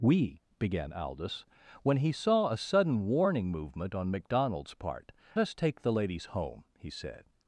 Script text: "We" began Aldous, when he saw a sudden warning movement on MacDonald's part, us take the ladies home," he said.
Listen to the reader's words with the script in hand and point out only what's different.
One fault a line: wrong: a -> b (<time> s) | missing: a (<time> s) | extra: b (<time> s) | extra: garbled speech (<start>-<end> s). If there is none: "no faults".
no faults